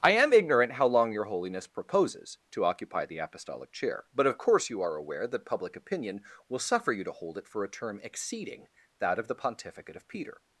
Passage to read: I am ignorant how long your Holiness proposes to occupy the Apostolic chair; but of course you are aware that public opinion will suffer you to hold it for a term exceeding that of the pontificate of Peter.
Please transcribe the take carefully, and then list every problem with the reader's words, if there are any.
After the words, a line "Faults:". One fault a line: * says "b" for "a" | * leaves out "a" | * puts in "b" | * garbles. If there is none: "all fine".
I am ignorant how long your Holiness proposes to occupy the Apostolic chair; but of course you are aware that public opinion will suffer you to hold it for a term exceeding that of the pontificate of Peter.
Faults:
all fine